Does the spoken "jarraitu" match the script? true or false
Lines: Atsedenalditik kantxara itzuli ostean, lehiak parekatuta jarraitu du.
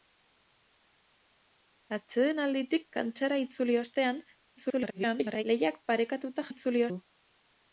false